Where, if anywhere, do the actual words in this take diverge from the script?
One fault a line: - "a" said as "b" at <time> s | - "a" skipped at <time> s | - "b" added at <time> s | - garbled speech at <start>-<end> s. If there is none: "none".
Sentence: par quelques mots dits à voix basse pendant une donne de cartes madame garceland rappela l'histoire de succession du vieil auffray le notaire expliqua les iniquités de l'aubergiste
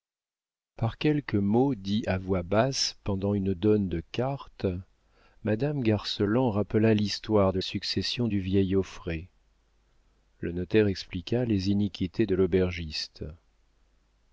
none